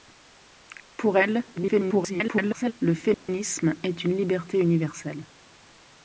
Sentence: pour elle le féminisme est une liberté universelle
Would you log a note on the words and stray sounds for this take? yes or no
yes